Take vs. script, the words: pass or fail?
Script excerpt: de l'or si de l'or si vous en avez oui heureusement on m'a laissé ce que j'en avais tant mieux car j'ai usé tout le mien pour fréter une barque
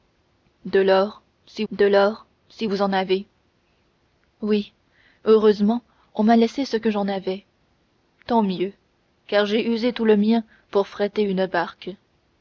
pass